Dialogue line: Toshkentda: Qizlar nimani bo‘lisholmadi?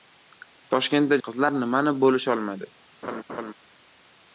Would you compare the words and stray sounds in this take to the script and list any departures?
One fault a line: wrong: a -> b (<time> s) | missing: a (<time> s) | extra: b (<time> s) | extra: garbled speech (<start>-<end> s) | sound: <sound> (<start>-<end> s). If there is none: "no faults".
sound: laugh (3.0-3.5 s)